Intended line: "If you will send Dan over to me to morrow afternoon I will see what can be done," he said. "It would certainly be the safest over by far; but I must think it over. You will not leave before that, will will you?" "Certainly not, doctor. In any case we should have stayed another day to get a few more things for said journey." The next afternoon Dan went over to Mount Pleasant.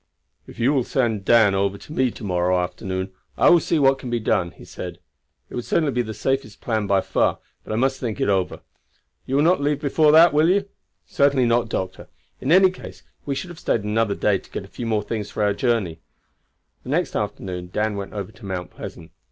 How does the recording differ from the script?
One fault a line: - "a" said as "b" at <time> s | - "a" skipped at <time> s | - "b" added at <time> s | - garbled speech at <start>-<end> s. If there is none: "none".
- "over" said as "plan" at 6.6 s
- "will" skipped at 10.5 s
- "said" said as "our" at 15.4 s